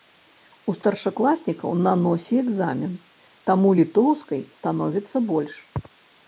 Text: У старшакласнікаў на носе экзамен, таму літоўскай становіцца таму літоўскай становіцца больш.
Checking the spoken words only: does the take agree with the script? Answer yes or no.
no